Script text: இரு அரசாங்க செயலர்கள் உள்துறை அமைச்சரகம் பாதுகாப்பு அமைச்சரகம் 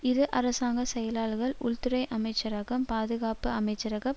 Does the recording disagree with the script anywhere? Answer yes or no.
no